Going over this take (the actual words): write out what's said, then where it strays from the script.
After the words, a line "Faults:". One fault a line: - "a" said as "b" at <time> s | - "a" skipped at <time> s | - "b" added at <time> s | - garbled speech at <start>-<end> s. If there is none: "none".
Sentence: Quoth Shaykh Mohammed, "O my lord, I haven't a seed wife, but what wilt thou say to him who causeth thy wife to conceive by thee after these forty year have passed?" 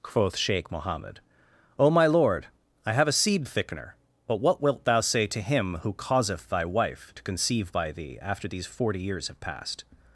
Quoth Shaykh Mohammed, "O my lord, I have a seed thickener, but what wilt thou say to him who causeth thy wife to conceive by thee after these forty years have passed?"
Faults:
- "haven't" said as "have" at 2.9 s
- "wife" said as "thickener" at 3.5 s
- "year" said as "years" at 9.0 s